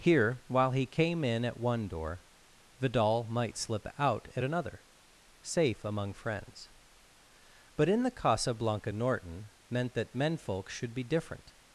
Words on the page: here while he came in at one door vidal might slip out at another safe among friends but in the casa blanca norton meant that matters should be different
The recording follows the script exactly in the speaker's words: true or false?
false